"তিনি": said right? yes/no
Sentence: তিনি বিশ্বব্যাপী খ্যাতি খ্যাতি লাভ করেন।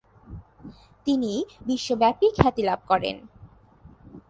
yes